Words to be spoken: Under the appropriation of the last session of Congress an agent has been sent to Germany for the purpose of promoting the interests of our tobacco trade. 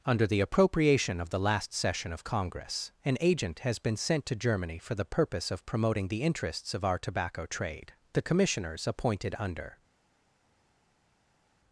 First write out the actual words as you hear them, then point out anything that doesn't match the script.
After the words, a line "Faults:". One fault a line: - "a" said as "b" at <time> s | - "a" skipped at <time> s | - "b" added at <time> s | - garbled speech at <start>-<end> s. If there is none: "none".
Under the appropriation of the last session of Congress an agent has been sent to Germany for the purpose of promoting the interests of our tobacco trade. The commissioners appointed under
Faults:
- "The commissioners appointed under" added at 8.1 s